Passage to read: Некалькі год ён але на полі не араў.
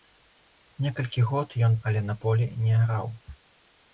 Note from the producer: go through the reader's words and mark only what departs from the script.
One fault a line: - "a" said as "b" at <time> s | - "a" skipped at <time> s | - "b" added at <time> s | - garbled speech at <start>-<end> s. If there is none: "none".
none